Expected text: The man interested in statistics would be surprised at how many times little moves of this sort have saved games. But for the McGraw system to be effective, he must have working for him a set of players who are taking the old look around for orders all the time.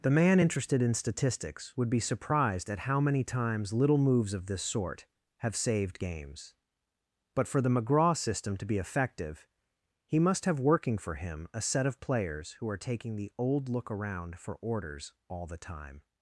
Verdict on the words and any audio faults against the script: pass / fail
pass